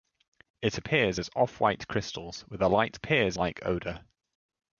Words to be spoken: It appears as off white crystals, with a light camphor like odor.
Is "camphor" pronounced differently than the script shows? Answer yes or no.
yes